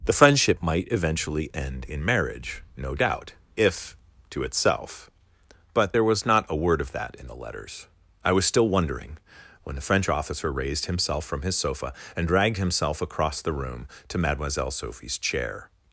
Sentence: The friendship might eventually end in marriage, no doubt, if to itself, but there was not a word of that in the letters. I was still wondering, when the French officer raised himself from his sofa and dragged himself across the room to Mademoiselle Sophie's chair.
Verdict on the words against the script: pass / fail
pass